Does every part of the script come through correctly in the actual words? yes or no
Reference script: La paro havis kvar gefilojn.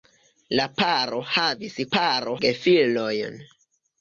no